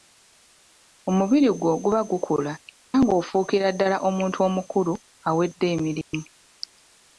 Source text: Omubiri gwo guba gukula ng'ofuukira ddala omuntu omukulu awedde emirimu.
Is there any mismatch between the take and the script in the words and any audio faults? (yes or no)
yes